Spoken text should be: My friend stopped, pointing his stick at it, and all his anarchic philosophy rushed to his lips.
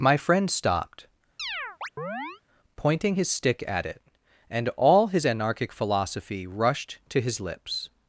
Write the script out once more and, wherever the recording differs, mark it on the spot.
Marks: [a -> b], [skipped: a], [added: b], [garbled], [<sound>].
My friend stopped, [chirp] pointing his stick at it, and all his anarchic philosophy rushed to his lips.